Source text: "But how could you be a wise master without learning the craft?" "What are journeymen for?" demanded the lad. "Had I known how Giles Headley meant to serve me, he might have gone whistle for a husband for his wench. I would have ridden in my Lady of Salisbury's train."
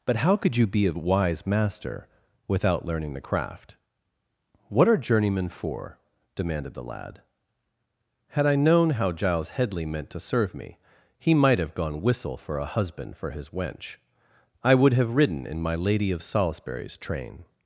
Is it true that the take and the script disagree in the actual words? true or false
false